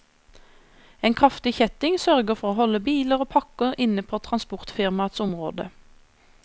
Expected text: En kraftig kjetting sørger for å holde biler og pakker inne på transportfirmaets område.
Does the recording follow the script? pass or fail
pass